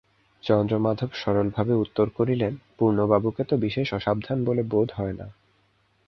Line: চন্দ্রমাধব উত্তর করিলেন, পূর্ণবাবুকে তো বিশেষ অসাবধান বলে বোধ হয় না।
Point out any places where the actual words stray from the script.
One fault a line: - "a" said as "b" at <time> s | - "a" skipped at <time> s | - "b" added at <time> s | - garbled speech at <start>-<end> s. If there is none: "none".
- "সরলভাবে" added at 1.1 s